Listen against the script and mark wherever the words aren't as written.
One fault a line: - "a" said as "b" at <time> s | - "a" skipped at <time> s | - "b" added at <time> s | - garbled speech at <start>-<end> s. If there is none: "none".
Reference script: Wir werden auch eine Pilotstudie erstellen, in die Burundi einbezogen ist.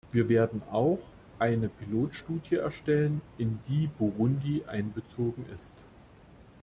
none